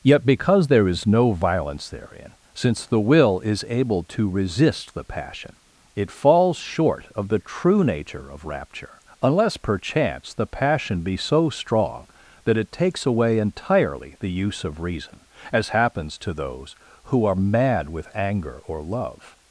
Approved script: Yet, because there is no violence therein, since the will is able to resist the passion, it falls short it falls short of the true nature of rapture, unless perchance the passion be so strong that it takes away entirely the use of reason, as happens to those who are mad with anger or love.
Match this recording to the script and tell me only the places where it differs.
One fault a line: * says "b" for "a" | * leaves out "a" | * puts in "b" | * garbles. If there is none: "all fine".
* leaves out "it falls short"